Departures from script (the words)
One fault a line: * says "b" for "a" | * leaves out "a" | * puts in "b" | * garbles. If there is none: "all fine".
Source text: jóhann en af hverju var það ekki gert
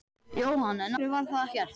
* leaves out "af"
* leaves out "ekki"